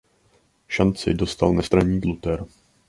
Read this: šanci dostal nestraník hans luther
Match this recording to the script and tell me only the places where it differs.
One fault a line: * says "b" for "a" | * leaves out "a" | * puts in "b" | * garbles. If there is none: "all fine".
* leaves out "hans"